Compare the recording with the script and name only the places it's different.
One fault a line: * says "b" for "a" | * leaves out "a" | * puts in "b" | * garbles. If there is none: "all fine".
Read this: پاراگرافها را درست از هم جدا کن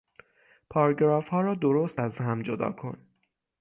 all fine